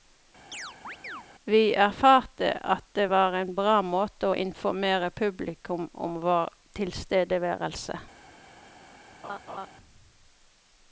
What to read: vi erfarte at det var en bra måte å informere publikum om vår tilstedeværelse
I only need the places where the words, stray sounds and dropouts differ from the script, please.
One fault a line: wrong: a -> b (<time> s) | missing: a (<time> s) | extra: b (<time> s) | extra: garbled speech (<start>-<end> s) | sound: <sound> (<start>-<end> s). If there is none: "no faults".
sound: chirp (0.5-1.3 s)
sound: laugh (9.2-9.7 s)